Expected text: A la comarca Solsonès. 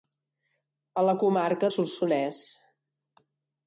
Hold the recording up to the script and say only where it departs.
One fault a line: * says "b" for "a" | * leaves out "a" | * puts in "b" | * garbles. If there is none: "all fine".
all fine